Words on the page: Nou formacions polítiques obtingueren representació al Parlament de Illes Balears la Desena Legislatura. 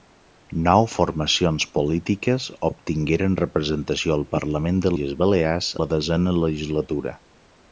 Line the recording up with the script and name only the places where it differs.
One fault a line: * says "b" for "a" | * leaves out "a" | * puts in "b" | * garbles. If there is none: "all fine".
all fine